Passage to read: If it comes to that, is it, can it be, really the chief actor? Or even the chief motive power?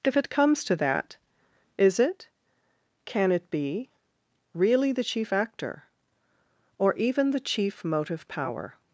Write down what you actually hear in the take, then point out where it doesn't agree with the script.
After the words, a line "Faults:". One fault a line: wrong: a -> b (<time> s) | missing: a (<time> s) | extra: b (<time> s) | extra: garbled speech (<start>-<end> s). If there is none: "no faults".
If it comes to that, is it, can it be, really the chief actor? Or even the chief motive power?
Faults:
no faults